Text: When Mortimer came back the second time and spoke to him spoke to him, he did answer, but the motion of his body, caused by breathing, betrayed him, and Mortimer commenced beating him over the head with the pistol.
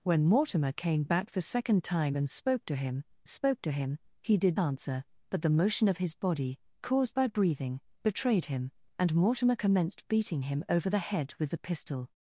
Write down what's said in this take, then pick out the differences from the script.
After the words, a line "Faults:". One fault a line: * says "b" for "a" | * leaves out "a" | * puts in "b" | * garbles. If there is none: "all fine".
When Mortimer came back the second time and spoke to him spoke to him, he did answer, but the motion of his body, caused by breathing, betrayed him, and Mortimer commenced beating him over the head with the pistol.
Faults:
all fine